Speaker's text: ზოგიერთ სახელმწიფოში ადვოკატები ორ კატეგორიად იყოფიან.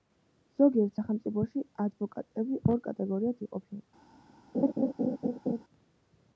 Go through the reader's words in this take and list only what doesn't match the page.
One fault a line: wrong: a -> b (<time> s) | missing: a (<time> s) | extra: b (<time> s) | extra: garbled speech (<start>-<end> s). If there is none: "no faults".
no faults